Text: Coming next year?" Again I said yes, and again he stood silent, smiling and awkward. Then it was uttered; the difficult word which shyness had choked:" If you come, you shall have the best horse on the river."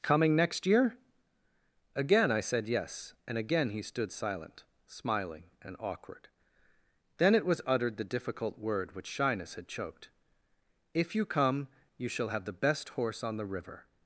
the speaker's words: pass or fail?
pass